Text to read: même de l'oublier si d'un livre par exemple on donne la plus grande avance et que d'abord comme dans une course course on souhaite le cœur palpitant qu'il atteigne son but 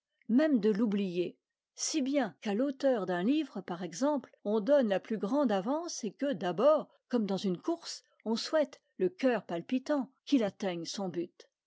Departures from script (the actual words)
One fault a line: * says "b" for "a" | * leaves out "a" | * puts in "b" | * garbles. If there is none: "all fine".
* puts in "bien qu'à l'auteur"
* leaves out "course"